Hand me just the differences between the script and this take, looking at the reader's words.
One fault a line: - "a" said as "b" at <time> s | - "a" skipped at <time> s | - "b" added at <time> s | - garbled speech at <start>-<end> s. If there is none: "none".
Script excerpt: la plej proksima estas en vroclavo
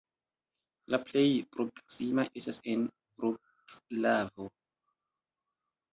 none